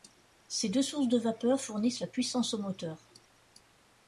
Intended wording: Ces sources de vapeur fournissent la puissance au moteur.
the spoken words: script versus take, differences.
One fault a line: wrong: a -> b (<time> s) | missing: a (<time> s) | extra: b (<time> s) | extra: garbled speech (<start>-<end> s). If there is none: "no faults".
extra: deux (0.7 s)